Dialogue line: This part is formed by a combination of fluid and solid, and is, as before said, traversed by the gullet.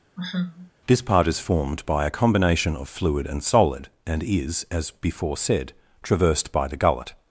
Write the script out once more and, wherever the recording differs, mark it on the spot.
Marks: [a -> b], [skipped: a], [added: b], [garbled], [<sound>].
[sigh] This part is formed by a combination of fluid and solid, and is, as before said, traversed by the gullet.